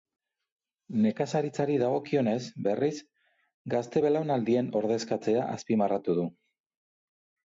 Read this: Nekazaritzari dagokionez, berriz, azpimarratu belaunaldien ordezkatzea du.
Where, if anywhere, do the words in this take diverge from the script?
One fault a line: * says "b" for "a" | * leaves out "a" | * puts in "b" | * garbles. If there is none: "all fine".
* says "gazte" for "azpimarratu"
* puts in "azpimarratu"